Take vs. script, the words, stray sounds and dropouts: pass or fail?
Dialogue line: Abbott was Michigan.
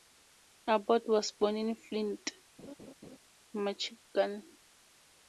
fail